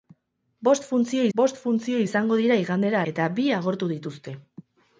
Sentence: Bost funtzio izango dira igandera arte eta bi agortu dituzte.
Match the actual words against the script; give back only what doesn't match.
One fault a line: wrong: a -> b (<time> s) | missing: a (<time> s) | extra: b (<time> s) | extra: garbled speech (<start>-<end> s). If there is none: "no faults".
extra: bost funtzio (1.4 s)
missing: arte (3.0 s)